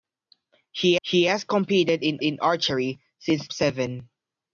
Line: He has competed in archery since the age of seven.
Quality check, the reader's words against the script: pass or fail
fail